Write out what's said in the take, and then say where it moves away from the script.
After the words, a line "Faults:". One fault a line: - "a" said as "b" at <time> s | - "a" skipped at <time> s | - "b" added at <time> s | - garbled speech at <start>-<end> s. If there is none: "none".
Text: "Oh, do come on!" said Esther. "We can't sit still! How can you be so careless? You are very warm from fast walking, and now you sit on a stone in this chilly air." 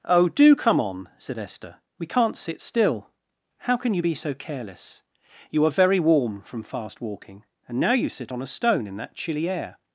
"Oh, do come on!" said Esther. "We can't sit still! How can you be so careless? You are very warm from fast walking, and now you sit on a stone in that chilly air."
Faults:
- "this" said as "that" at 9.0 s